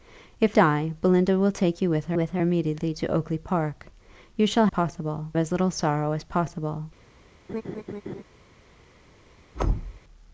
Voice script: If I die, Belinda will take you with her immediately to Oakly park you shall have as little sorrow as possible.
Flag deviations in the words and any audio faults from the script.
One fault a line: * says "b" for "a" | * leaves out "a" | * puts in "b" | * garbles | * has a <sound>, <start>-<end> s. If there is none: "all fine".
* leaves out "I"
* puts in "with her"
* says "possible" for "have"
* has a laugh, 7.5-8.2 s
* has a thud, 9.5-10.0 s